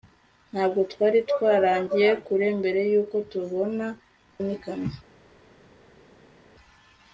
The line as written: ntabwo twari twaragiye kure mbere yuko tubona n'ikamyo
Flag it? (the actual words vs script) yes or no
no